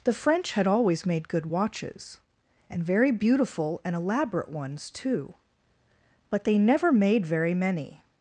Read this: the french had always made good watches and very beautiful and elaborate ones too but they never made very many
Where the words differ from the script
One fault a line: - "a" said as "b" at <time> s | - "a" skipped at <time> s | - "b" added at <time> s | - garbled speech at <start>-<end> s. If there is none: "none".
none